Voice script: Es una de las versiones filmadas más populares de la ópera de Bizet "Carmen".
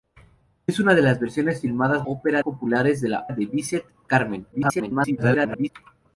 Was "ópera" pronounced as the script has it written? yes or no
no